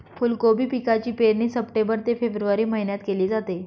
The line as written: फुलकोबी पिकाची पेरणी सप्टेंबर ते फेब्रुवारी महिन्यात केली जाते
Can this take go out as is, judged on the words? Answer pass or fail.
pass